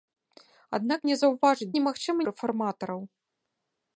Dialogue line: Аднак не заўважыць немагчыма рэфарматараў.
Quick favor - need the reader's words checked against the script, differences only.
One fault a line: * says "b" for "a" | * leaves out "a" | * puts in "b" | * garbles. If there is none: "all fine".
all fine